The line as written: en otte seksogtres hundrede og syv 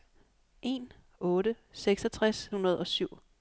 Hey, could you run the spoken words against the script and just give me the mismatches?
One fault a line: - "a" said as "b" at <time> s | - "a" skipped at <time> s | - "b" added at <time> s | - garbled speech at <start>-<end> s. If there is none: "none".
none